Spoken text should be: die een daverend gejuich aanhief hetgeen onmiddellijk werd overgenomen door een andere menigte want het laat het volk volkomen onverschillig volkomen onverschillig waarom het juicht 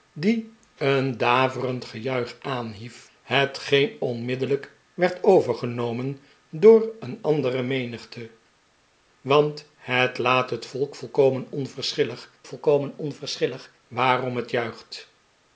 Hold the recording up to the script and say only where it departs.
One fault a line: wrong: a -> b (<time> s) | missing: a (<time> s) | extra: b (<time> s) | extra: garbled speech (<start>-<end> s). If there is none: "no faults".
no faults